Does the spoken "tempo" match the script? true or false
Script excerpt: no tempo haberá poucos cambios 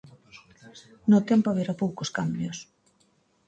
true